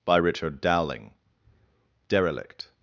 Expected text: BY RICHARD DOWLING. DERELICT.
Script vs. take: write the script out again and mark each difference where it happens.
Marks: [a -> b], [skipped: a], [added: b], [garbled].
BY RICHARD DOWLING. DERELICT.